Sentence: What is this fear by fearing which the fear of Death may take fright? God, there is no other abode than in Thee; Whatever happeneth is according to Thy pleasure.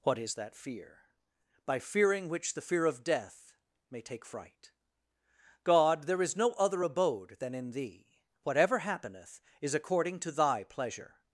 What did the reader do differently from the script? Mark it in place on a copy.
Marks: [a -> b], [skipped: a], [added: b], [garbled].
What is [this -> that] fear by fearing which the fear of Death may take fright? God, there is no other abode than in Thee; Whatever happeneth is according to Thy pleasure.